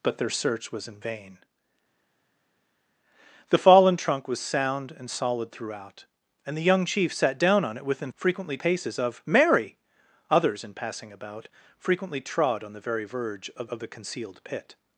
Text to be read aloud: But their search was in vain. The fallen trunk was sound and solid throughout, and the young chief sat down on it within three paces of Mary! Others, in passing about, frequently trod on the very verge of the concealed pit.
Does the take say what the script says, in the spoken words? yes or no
no